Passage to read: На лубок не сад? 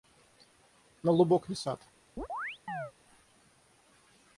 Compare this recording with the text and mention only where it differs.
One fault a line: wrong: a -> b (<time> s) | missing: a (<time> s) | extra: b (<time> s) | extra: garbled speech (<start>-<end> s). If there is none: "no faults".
no faults